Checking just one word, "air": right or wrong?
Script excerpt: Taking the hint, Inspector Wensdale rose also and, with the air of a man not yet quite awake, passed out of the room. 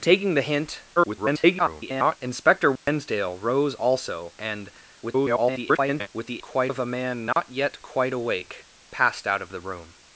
wrong